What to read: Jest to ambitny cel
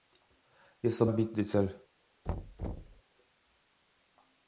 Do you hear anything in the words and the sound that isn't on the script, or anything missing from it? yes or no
yes